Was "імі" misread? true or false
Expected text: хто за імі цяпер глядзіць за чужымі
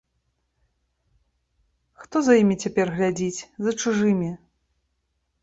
false